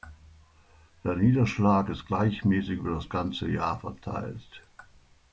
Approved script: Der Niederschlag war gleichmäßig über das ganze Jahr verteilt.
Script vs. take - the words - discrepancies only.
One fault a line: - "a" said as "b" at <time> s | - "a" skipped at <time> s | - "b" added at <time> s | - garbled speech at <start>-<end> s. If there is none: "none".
- "war" said as "ist" at 1.9 s